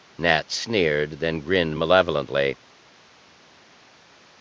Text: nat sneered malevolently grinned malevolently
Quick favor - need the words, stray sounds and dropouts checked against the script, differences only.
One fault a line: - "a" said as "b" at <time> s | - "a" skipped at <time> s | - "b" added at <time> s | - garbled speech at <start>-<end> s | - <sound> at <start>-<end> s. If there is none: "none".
- "malevolently" said as "then" at 1.2 s